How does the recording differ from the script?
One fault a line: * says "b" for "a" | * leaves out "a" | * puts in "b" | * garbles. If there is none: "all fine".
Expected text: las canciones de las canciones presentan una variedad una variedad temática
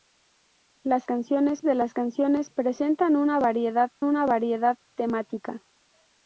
all fine